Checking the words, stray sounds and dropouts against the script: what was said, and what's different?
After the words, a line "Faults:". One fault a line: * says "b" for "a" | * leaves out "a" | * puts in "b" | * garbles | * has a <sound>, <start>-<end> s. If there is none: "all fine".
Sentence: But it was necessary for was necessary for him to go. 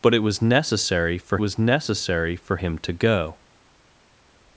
But it was necessary for was necessary for him to go.
Faults:
all fine